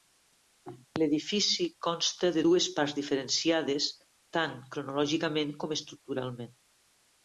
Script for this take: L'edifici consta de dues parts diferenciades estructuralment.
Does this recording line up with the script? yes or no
no